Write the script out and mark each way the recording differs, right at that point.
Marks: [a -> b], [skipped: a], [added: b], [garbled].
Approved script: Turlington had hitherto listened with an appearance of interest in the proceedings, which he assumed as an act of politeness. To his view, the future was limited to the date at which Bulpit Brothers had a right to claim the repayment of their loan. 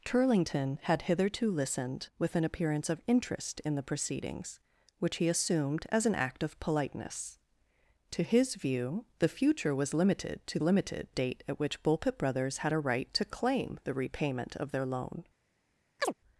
Turlington had hitherto listened with an appearance of interest in the proceedings, which he assumed as an act of politeness. To his view, the future was limited to [the -> limited] date at which Bulpit Brothers had a right to claim the repayment of their loan.